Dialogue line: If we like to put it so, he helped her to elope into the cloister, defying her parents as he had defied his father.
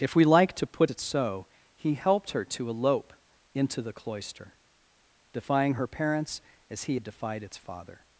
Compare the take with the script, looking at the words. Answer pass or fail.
fail